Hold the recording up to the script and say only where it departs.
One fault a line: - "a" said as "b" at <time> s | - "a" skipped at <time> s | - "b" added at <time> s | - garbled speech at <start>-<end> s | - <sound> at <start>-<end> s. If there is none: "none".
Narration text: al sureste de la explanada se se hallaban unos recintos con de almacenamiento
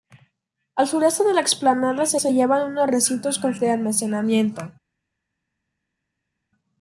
none